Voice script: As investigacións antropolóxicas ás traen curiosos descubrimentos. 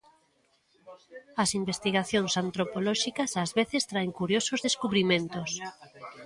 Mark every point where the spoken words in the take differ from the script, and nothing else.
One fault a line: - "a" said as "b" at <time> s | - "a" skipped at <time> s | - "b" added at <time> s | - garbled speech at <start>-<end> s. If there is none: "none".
- "veces" added at 3.6 s